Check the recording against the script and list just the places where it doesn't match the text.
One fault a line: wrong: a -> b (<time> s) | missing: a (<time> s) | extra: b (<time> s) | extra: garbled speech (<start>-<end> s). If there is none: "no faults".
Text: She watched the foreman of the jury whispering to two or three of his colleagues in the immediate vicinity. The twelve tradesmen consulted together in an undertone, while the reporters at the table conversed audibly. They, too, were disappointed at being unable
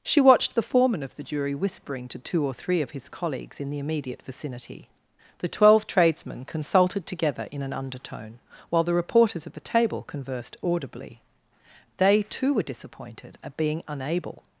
no faults